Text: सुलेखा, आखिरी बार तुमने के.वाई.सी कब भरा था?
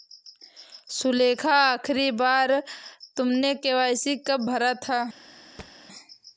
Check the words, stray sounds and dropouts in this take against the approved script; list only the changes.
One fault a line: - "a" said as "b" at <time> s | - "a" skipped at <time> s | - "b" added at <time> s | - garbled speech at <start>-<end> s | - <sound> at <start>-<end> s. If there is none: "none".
- thud at 5.6-5.7 s